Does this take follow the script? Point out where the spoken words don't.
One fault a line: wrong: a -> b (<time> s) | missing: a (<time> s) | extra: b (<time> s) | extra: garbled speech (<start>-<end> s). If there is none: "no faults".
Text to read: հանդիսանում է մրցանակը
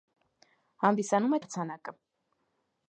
no faults